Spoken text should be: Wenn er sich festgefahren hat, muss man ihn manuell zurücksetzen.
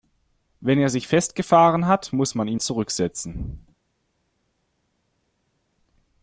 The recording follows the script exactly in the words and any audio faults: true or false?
false